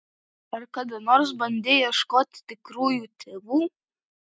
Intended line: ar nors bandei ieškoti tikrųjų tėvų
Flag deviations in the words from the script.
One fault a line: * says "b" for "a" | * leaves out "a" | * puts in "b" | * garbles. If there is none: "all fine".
* puts in "kada"